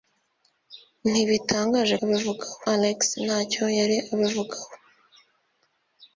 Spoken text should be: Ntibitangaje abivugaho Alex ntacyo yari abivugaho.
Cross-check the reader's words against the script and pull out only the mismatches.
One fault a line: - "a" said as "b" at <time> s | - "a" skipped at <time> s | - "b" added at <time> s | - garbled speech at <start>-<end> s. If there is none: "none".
none